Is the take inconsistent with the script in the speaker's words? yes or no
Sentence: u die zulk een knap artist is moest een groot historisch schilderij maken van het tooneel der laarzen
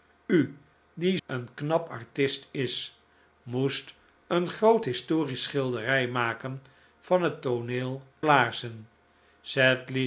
yes